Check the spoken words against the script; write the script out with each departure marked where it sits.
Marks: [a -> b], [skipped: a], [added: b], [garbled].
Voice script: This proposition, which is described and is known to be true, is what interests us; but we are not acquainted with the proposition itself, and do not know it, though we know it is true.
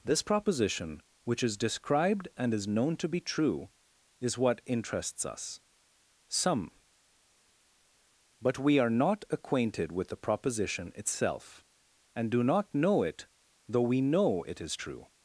This proposition, which is described and is known to be true, is what interests us; [added: some] but we are not acquainted with the proposition itself, and do not know it, though we know it is true.